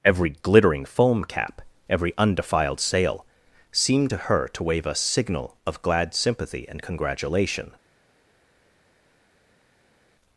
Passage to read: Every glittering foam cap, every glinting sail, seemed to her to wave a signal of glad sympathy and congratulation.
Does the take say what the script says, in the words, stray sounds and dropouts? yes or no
no